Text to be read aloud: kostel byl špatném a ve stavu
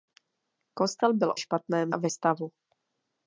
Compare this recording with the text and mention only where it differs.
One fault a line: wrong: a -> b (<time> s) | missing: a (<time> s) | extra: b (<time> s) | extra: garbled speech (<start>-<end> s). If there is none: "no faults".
no faults